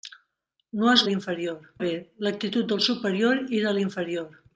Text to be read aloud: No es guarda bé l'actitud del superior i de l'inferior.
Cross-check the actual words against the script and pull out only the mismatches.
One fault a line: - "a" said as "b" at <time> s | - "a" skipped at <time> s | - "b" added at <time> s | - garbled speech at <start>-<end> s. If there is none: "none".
- "guarda" said as "l'inferior" at 1.1 s